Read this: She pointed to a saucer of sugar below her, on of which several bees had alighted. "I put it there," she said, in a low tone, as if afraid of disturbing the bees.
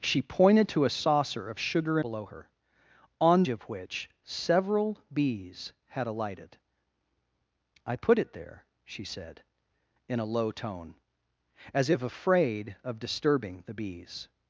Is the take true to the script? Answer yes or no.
yes